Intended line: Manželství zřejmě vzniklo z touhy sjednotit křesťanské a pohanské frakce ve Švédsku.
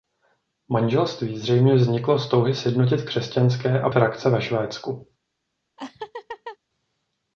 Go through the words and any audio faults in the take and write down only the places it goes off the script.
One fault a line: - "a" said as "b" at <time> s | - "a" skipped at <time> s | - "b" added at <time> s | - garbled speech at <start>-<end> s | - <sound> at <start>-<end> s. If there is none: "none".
- "pohanské" skipped at 3.9 s
- laugh at 5.8-6.6 s